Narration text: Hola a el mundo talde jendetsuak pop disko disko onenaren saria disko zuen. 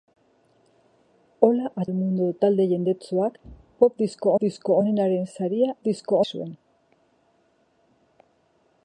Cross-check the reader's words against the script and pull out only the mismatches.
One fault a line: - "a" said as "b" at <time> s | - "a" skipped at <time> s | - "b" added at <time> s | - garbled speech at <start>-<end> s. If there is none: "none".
none